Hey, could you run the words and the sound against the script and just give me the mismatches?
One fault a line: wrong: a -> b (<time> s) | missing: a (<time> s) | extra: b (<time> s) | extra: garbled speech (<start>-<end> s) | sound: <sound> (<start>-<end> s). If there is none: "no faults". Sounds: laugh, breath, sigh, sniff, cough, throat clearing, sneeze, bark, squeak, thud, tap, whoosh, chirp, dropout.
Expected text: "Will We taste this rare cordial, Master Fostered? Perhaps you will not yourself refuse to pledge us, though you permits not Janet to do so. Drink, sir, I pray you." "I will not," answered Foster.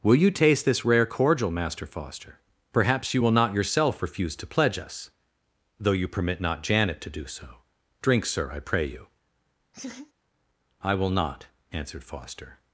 wrong: We -> YOU (0.1 s)
wrong: Fostered -> Foster (1.9 s)
wrong: permits -> permit (6.1 s)
sound: laugh (9.7-10.1 s)